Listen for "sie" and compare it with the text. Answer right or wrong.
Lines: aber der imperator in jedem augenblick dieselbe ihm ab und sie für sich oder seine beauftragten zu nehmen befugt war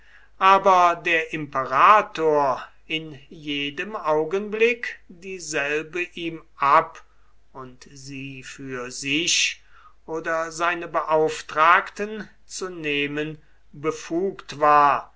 right